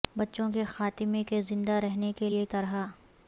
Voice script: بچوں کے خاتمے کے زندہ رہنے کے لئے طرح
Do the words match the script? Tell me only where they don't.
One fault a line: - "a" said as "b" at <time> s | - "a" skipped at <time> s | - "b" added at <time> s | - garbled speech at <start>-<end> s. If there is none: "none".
none